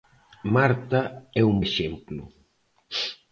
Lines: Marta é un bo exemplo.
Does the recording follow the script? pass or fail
fail